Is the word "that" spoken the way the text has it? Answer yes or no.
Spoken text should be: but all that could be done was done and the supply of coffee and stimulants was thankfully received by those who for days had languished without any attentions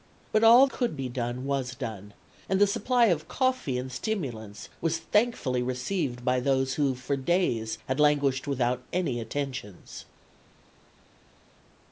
no